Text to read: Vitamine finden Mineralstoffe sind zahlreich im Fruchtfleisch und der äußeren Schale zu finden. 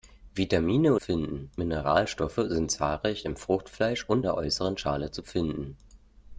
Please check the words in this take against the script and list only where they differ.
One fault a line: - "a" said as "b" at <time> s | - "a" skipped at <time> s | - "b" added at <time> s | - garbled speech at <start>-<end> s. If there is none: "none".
none